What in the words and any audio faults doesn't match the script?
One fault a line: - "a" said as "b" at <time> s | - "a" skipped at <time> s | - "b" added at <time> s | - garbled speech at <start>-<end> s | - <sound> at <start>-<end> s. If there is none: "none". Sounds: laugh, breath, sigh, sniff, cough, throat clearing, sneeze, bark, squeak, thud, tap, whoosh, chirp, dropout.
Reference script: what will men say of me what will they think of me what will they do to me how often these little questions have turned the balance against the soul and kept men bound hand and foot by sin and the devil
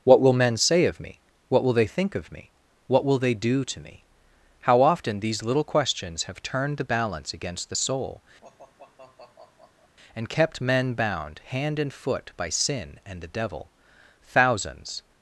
- sigh at 8.4-10.0 s
- "thousands" added at 14.2 s